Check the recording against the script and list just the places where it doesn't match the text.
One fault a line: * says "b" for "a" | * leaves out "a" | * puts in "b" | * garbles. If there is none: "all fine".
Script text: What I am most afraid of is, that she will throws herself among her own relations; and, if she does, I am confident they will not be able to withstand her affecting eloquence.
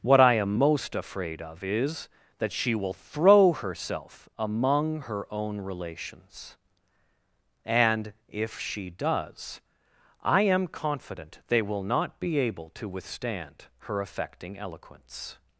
* says "throw" for "throws"